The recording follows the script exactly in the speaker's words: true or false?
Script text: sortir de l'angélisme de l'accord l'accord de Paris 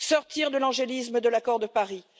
false